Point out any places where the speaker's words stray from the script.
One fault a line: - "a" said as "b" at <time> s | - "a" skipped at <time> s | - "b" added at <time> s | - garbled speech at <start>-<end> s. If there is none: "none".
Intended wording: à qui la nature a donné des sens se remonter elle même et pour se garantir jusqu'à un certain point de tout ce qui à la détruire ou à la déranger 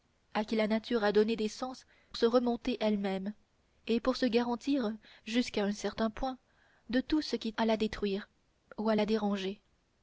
none